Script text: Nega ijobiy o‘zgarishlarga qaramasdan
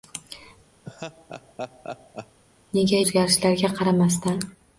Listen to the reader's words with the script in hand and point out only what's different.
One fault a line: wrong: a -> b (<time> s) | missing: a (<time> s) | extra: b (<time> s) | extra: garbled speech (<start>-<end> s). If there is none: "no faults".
missing: ijobiy (3.0 s)